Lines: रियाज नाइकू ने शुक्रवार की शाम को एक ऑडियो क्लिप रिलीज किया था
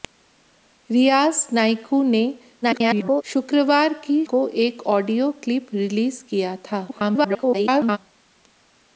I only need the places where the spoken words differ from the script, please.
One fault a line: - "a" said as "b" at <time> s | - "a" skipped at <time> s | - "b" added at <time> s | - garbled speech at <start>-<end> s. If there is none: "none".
- garbled speech at 2.6-3.2 s
- "शाम" skipped at 4.2 s
- garbled speech at 6.9-8.0 s